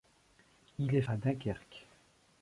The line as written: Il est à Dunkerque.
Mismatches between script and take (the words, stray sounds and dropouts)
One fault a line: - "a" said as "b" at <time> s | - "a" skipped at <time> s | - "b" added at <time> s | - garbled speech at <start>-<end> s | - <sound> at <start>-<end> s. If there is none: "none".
none